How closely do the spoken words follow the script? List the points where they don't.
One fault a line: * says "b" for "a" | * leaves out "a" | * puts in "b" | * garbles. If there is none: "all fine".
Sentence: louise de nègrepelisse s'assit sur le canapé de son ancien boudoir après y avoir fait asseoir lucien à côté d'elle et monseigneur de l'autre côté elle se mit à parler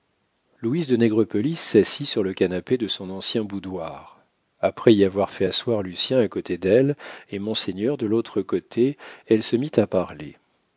all fine